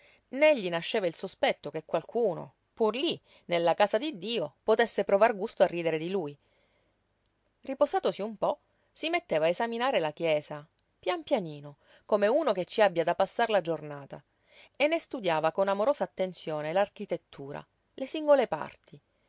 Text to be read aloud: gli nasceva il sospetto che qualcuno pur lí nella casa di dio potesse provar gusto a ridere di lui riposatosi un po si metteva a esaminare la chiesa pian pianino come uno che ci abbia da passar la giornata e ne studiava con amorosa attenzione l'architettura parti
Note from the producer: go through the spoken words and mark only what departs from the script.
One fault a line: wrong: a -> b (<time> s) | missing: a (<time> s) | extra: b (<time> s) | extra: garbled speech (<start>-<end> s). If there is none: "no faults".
extra: le singole (17.9 s)